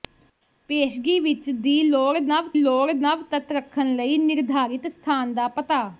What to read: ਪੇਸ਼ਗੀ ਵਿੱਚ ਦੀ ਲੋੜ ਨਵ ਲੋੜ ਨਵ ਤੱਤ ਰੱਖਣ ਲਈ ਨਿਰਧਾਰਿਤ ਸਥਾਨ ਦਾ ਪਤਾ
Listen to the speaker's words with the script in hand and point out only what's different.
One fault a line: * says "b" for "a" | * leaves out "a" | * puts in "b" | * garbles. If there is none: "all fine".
all fine